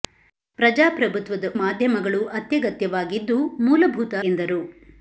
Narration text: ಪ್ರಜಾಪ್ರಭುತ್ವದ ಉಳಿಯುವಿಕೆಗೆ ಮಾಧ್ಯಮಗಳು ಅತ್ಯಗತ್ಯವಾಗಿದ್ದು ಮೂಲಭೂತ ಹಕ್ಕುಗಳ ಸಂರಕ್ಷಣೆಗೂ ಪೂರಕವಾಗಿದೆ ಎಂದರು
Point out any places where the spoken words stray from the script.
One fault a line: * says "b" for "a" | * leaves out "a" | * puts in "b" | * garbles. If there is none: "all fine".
* leaves out "ಉಳಿಯುವಿಕೆಗೆ"
* leaves out "ಹಕ್ಕುಗಳ ಸಂರಕ್ಷಣೆಗೂ ಪೂರಕವಾಗಿದೆ"